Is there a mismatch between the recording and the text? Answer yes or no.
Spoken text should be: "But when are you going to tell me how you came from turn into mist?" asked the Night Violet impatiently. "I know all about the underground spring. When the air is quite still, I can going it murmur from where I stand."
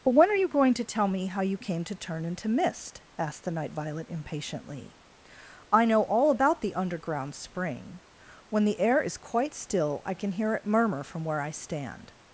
yes